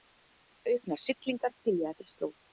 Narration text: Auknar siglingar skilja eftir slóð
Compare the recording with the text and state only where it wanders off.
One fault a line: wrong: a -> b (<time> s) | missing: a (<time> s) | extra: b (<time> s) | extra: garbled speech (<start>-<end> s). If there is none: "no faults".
no faults